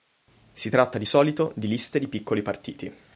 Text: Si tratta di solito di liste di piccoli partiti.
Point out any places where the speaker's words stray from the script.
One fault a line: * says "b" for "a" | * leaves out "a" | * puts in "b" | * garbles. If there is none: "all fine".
all fine